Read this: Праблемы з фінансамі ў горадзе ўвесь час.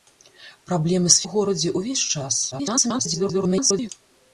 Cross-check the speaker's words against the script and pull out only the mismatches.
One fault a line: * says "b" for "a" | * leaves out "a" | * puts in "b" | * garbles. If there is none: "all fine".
* leaves out "фінансамі"
* garbles